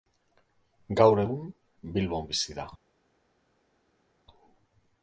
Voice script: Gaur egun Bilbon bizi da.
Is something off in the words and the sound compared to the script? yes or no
no